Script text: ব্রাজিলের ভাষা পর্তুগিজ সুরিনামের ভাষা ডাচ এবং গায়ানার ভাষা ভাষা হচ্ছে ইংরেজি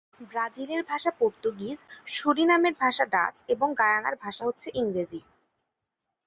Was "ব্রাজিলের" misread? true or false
false